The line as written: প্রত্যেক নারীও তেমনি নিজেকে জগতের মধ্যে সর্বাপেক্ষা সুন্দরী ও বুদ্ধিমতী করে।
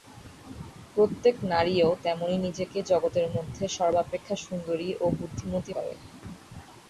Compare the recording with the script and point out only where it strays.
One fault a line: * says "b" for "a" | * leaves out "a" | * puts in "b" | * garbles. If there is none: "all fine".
all fine